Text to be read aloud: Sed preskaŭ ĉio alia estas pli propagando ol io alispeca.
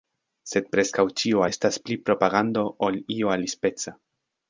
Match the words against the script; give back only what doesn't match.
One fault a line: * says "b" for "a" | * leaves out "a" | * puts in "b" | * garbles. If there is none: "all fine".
* leaves out "alia"